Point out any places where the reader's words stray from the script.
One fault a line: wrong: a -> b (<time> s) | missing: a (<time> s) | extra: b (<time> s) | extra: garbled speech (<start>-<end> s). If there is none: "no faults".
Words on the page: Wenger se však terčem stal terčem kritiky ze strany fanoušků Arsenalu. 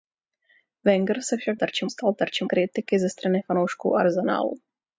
no faults